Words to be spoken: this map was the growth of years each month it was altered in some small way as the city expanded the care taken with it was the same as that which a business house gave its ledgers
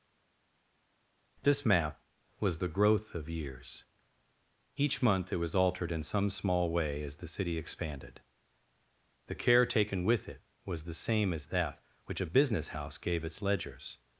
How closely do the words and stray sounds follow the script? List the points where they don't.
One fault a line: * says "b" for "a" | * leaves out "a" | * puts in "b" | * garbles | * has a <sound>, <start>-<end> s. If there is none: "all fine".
all fine